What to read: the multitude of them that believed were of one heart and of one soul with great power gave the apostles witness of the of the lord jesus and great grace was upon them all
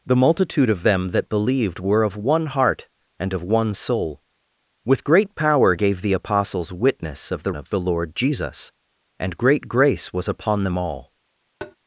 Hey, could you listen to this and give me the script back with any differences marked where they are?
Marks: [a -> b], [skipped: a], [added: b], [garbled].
the multitude of them that believed were of one heart and of one soul with great power gave the apostles witness of the of the lord jesus and great grace was upon them all